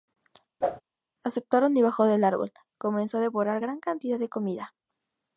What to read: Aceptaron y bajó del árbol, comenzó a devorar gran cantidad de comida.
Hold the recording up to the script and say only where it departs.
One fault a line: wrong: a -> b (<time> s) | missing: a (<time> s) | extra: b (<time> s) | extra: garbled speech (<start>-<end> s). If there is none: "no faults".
no faults